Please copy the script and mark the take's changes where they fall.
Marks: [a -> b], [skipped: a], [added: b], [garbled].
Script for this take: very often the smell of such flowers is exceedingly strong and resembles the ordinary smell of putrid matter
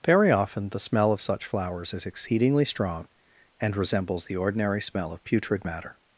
very often the smell of such flowers is exceedingly strong and resembles the ordinary smell of putrid matter